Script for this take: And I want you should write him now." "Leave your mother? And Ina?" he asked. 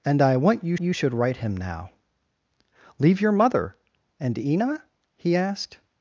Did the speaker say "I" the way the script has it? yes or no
yes